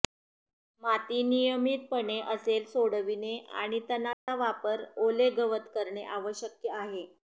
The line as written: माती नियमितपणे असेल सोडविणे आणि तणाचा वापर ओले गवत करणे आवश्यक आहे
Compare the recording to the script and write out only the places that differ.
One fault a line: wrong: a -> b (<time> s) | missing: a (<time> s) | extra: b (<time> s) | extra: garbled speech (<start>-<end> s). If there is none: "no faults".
no faults